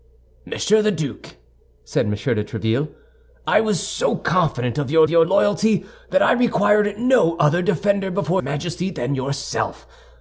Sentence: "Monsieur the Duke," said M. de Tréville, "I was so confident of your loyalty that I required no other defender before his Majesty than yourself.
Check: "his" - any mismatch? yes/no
yes